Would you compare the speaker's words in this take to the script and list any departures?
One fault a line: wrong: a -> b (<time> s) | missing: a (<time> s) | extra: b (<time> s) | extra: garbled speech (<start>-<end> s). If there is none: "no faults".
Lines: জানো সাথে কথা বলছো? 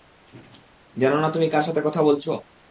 extra: না তুমি কার (1.2 s)